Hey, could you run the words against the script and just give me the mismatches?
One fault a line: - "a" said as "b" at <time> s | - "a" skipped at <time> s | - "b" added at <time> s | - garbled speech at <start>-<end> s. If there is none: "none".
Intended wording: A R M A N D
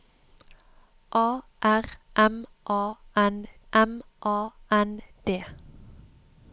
- "M A N" added at 3.7 s